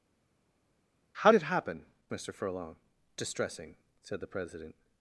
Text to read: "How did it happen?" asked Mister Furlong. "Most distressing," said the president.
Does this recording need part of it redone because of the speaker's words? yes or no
yes